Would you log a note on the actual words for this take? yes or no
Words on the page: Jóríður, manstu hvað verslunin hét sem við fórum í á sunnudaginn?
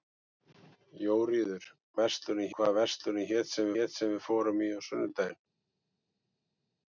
yes